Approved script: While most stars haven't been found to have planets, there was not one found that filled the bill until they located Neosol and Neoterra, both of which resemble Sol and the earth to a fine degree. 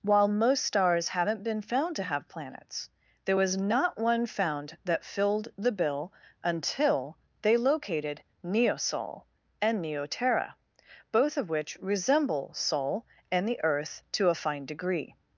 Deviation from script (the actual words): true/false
false